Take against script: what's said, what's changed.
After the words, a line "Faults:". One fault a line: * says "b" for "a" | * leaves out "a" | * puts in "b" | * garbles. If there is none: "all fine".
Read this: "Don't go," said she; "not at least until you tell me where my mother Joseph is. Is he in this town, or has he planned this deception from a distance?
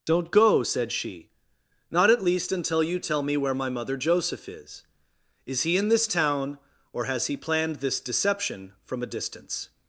"Don't go," said she; "not at least until you tell me where my mother Joseph is. Is he in this town, or has he planned this deception from a distance?
Faults:
all fine